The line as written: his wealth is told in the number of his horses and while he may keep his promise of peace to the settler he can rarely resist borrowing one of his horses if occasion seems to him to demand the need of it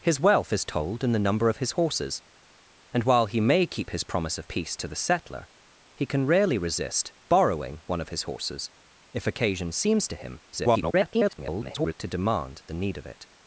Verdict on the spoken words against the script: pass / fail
fail